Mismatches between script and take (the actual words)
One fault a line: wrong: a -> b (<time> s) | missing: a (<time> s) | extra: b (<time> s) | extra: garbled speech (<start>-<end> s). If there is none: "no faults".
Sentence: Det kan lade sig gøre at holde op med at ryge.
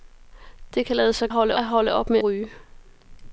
wrong: gøre -> holde (1.3 s)
missing: at (2.2 s)